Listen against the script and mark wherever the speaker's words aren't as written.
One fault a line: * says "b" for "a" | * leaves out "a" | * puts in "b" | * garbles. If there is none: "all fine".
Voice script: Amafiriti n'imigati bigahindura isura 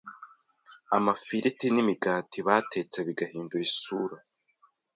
* puts in "batetse"